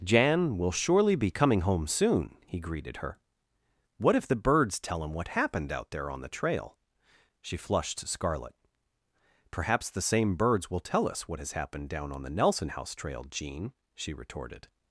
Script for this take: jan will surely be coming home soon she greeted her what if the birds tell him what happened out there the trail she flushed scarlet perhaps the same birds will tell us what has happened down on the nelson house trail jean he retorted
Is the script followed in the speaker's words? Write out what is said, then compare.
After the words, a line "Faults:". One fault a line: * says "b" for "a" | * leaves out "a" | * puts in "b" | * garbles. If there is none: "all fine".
jan will surely be coming home soon he greeted her what if the birds tell him what happened out there on the trail she flushed scarlet perhaps the same birds will tell us what has happened down on the nelson house trail jean she retorted
Faults:
* says "he" for "she"
* puts in "on"
* says "she" for "he"